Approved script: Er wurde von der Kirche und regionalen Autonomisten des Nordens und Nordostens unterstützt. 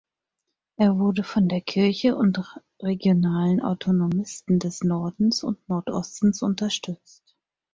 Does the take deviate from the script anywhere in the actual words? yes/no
no